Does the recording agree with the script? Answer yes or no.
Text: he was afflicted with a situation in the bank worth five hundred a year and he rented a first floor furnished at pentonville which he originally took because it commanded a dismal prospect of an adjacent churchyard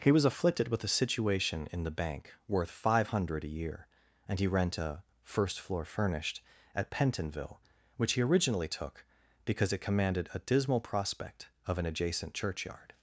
no